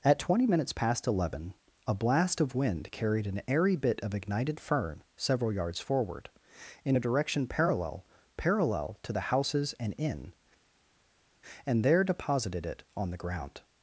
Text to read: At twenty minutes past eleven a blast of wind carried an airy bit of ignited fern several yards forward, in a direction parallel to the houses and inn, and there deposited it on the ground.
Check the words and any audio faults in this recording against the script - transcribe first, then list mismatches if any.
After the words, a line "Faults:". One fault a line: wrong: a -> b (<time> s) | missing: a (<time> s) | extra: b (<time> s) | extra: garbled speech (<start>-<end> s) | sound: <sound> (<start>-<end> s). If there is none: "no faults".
At twenty minutes past eleven a blast of wind carried an airy bit of ignited fern several yards forward, in a direction parallel parallel to the houses and inn, and there deposited it on the ground.
Faults:
extra: parallel (8.4 s)